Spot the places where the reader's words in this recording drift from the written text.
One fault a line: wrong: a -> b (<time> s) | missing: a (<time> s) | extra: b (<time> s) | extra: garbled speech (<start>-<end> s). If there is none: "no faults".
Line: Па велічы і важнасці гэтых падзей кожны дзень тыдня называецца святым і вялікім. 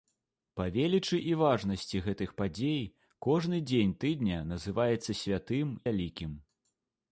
missing: і (5.8 s)